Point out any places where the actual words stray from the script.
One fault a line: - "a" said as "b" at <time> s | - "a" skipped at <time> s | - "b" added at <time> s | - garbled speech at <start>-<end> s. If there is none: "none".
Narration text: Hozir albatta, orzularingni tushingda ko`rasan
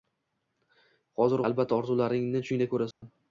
none